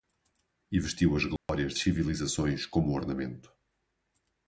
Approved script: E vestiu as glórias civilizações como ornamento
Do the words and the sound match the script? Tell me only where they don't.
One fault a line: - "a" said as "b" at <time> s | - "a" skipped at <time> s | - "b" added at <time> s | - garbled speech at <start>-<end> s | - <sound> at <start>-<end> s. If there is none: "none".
- dropout at 1.4-1.5 s